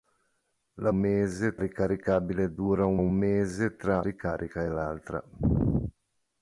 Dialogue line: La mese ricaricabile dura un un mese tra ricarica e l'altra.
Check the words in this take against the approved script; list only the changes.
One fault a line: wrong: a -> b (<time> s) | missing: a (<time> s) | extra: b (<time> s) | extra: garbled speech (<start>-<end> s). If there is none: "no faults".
no faults